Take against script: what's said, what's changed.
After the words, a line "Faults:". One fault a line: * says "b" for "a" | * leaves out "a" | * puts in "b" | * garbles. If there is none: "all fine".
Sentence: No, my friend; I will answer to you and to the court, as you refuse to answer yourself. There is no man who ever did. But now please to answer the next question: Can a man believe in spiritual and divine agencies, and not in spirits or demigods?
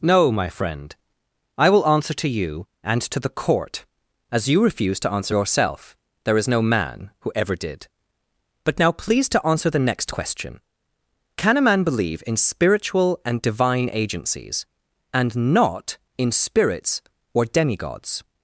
No, my friend; I will answer to you and to the court, as you refuse to answer yourself. There is no man who ever did. But now please to answer the next question: Can a man believe in spiritual and divine agencies, and not in spirits or demigods?
Faults:
all fine